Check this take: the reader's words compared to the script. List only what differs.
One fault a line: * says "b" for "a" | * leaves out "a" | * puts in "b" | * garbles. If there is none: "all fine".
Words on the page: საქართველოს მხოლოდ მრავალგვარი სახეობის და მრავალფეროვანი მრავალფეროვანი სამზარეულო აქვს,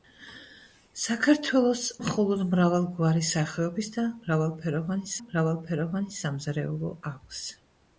all fine